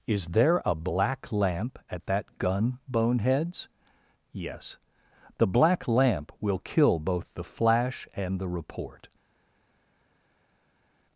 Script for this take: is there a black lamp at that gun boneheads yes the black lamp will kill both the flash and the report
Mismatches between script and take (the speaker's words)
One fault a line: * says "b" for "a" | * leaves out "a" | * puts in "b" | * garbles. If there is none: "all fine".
all fine